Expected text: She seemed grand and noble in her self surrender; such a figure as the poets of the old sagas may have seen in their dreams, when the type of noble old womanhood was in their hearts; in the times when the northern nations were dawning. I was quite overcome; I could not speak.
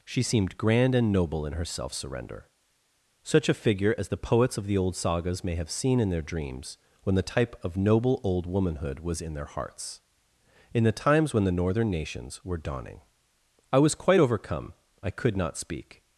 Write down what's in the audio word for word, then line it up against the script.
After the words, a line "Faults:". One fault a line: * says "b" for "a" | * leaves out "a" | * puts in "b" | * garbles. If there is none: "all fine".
She seemed grand and noble in her self surrender; such a figure as the poets of the old sagas may have seen in their dreams, when the type of noble old womanhood was in their hearts; in the times when the northern nations were dawning. I was quite overcome; I could not speak.
Faults:
all fine